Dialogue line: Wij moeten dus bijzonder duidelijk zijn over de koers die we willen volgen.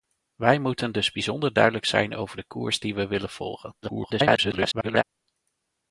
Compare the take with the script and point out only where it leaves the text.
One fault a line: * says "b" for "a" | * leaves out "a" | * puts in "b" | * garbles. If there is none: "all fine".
* garbles